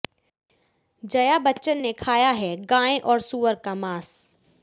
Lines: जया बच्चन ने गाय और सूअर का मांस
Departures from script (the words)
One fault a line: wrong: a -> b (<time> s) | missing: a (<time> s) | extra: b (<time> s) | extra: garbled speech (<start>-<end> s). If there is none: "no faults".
extra: खाया है (1.9 s)